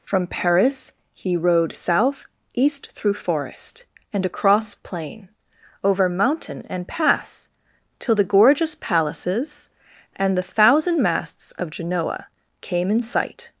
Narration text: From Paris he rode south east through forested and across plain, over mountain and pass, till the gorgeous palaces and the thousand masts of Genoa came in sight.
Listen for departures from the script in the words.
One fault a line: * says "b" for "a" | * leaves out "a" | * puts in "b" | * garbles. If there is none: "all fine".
* says "forest" for "forested"